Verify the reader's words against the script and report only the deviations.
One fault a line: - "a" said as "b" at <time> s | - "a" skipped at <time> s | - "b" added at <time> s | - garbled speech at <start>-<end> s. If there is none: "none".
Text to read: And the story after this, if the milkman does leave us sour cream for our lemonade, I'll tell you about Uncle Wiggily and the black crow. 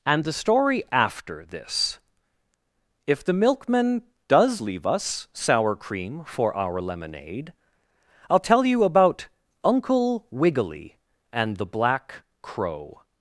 none